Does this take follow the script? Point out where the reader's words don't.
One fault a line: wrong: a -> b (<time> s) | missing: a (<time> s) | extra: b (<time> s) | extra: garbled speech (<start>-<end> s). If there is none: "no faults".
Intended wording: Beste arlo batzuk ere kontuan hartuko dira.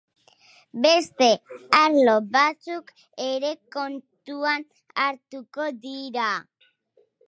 no faults